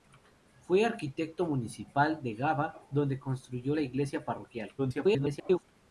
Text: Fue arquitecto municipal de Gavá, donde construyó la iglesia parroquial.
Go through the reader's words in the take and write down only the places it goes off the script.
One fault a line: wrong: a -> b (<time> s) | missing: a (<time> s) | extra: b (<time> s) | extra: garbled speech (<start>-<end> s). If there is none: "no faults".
extra: garbled speech (4.8-5.6 s)